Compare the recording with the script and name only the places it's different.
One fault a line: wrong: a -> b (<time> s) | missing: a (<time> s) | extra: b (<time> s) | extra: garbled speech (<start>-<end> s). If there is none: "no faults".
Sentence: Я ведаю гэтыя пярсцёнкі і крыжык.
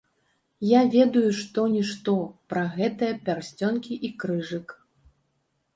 extra: што нішто пра (1.4 s)